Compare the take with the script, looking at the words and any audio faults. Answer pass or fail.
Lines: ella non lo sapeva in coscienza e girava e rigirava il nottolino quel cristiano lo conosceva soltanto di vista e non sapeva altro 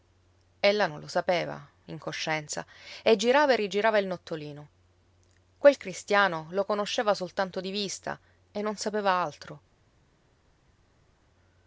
pass